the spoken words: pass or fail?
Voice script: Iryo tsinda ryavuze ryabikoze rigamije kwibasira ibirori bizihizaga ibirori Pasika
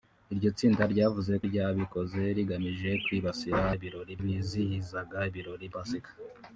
pass